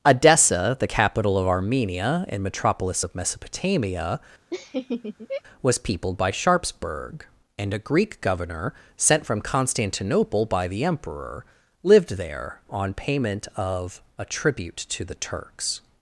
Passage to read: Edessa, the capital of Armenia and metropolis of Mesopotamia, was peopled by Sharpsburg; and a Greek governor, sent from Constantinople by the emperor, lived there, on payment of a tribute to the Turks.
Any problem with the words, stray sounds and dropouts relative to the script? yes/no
yes